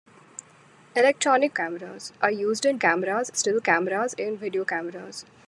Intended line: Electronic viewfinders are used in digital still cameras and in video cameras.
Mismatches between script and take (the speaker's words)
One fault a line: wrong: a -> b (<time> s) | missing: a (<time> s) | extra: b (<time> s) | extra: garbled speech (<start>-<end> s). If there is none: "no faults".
wrong: viewfinders -> cameras (1.5 s)
wrong: digital -> cameras (2.8 s)
missing: and (4.2 s)